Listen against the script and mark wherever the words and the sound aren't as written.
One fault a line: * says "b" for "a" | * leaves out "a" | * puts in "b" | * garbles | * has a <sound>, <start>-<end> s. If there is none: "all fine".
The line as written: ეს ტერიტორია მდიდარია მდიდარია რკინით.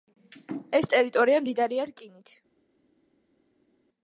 * leaves out "მდიდარია"